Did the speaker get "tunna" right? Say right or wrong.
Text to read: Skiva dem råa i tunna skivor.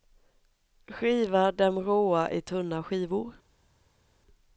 right